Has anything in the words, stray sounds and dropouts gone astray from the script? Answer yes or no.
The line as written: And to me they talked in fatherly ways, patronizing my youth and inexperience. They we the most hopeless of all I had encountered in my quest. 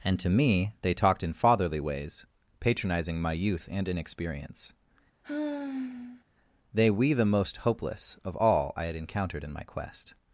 yes